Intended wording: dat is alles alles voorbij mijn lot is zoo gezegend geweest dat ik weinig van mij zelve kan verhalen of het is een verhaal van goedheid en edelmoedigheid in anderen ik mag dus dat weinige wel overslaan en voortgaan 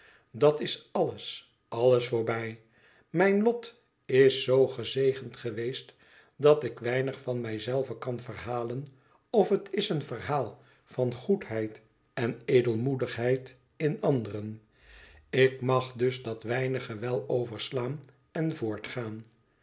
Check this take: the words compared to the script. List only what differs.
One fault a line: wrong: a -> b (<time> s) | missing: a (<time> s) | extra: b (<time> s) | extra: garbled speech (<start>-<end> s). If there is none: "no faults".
no faults